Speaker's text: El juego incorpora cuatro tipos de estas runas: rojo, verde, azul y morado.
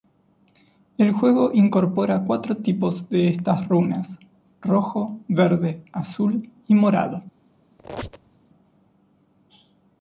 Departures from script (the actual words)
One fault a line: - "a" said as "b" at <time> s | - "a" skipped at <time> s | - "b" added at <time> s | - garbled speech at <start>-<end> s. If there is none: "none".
none